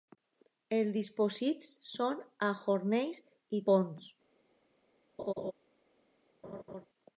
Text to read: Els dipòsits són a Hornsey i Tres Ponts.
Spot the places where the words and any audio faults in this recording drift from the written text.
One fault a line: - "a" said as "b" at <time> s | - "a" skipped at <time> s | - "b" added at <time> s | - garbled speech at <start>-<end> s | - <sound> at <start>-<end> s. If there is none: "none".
- "Tres" skipped at 3.6 s
- laugh at 5.2-5.5 s
- laugh at 6.4-6.9 s